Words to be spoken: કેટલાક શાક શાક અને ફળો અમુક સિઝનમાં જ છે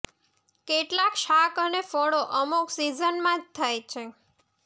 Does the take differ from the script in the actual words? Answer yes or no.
yes